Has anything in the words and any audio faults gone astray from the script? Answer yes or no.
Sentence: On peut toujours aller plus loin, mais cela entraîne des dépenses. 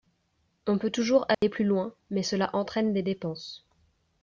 yes